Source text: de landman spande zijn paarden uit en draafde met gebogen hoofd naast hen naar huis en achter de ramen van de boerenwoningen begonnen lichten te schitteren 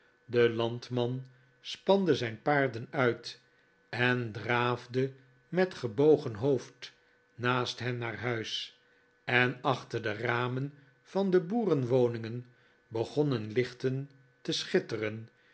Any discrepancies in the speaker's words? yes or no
no